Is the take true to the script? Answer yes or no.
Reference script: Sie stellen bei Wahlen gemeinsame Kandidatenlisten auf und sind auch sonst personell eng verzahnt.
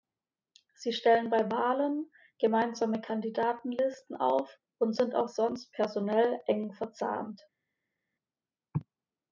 yes